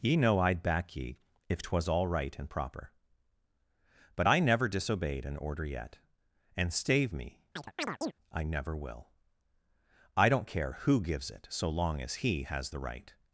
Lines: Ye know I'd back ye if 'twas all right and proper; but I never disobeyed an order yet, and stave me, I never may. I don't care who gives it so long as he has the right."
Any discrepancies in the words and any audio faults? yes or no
yes